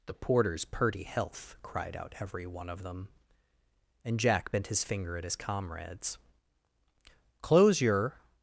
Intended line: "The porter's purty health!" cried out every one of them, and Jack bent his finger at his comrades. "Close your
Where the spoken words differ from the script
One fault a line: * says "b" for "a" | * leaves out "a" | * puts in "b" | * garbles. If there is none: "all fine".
all fine